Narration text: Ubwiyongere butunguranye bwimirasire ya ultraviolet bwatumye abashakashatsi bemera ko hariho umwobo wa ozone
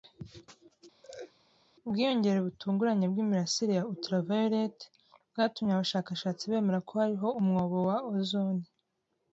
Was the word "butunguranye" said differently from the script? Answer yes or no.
no